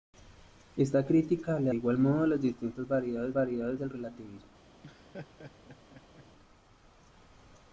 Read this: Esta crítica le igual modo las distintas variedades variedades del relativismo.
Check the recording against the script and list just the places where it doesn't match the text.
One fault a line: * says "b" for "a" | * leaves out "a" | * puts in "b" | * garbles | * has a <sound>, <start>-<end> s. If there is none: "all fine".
* has a laugh, 4.8-6.3 s